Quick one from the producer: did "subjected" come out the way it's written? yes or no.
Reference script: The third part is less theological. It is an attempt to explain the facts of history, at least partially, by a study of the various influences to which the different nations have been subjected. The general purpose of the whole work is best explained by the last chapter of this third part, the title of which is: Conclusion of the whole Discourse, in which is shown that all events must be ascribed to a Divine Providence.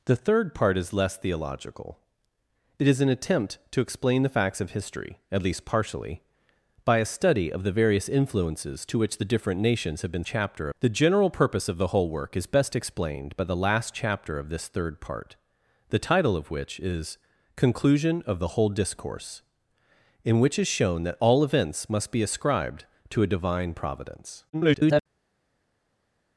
no